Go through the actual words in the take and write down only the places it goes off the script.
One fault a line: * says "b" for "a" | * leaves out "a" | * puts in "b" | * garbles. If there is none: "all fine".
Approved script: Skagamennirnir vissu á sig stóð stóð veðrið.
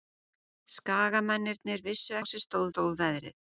all fine